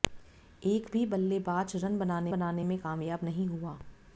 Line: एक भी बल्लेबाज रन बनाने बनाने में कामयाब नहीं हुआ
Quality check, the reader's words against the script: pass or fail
pass